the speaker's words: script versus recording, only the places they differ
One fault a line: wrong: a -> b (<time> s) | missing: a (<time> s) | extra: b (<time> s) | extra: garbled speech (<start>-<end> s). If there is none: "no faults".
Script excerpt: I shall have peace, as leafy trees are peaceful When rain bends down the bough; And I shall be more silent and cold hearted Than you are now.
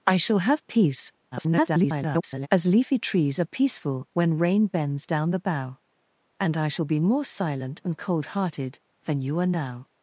extra: garbled speech (1.3-2.5 s)